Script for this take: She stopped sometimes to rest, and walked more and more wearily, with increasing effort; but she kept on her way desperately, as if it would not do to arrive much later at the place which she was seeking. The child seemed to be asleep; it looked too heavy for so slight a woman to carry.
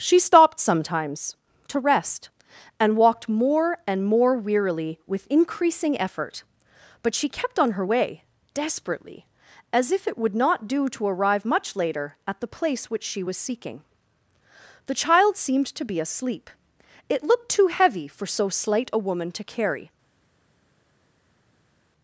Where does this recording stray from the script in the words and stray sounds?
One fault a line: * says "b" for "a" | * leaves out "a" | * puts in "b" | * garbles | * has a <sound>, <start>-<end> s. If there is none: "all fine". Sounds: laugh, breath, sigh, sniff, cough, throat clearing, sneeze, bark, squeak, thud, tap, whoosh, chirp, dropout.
all fine